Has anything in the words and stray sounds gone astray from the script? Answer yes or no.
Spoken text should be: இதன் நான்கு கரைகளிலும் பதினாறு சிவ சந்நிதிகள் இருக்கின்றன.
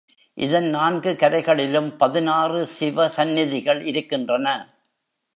no